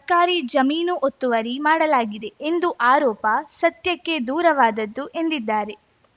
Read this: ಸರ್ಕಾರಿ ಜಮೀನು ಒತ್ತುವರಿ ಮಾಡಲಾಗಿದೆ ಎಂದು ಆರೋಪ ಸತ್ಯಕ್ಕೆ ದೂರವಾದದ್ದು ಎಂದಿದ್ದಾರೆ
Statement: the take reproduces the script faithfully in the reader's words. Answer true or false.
true